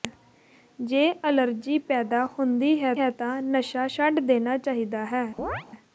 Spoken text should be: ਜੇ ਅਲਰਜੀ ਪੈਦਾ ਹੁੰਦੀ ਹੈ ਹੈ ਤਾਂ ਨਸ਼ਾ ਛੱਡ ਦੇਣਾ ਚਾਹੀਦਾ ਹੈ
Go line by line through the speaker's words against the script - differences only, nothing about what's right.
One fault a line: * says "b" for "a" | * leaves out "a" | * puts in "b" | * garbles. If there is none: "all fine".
all fine